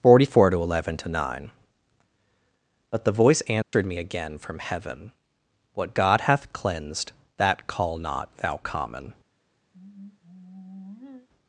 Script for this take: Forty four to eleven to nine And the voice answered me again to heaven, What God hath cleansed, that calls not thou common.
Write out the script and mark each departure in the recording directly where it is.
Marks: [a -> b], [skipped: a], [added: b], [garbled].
Forty four to eleven to nine [And -> But] the voice answered me again [to -> from] heaven, What God hath cleansed, that [calls -> call] not thou common.